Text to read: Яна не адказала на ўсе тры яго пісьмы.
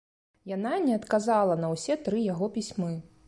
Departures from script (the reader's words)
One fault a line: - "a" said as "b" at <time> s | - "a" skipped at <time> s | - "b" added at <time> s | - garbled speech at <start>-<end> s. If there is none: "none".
none